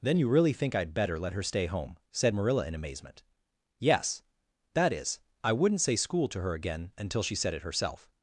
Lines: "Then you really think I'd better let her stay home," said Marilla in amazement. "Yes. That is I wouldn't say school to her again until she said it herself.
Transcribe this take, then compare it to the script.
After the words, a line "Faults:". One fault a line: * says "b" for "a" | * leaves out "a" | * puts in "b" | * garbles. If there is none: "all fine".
"Then you really think I'd better let her stay home," said Marilla in amazement. "Yes. That is I wouldn't say school to her again until she said it herself.
Faults:
all fine